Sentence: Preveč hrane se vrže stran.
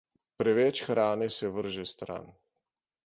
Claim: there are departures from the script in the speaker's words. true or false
false